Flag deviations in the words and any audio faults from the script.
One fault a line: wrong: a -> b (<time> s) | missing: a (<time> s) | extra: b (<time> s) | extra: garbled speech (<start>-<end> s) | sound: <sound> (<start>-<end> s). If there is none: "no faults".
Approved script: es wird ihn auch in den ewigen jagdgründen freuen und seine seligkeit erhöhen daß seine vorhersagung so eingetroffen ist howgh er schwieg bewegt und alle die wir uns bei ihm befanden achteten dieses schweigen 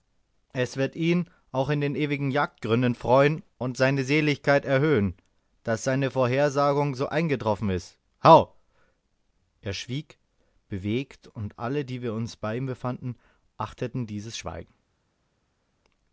no faults